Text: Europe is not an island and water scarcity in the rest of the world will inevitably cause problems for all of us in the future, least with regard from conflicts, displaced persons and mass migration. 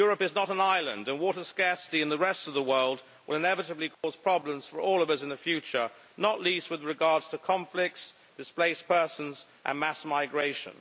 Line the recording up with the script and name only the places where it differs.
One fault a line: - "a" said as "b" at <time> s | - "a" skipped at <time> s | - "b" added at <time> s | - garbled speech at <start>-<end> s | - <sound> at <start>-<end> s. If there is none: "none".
- dropout at 3.9-4.0 s
- "not" added at 6.2 s
- "from" said as "to" at 7.2 s